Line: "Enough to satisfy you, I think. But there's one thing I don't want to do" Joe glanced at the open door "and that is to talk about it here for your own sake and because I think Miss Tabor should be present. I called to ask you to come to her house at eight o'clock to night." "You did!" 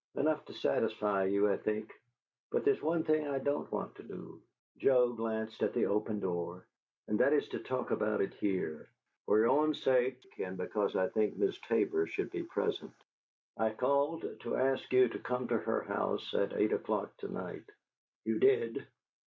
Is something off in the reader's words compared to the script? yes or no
no